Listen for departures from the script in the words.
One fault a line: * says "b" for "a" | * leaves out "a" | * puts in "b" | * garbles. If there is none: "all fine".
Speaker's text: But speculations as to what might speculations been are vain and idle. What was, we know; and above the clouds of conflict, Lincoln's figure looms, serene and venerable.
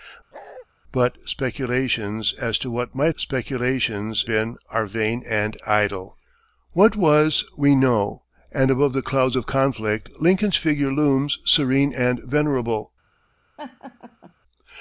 all fine